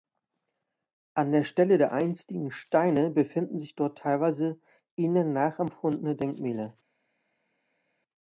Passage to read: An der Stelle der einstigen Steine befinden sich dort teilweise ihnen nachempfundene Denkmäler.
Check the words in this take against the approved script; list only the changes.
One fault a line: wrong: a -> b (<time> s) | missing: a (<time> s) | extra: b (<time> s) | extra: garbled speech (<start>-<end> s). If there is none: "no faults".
no faults